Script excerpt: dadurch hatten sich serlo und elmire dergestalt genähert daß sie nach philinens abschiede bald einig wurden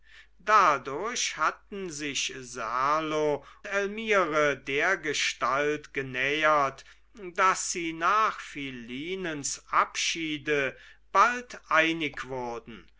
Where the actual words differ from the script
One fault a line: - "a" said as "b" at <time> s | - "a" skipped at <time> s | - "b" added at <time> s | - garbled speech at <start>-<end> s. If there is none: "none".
- "und" skipped at 3.4 s